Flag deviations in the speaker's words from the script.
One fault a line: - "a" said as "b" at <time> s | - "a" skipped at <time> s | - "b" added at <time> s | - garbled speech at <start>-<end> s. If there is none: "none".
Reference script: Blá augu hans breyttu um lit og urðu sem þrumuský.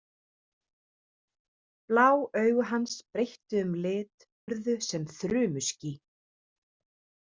- "og" skipped at 4.3 s